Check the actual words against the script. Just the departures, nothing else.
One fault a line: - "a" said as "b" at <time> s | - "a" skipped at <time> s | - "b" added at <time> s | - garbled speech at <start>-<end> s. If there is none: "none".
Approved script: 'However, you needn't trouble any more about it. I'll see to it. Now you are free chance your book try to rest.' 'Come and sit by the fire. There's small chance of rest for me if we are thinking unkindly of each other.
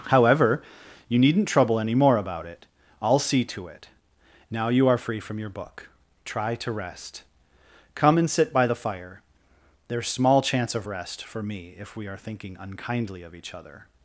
- "chance" said as "from" at 5.2 s